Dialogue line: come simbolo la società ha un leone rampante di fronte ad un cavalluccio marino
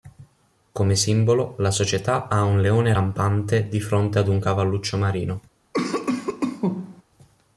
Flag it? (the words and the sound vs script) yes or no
yes